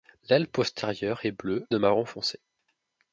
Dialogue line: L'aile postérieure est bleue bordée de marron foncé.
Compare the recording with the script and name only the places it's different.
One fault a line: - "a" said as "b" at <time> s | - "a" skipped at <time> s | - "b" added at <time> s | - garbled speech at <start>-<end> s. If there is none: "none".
- "bordée" skipped at 1.7 s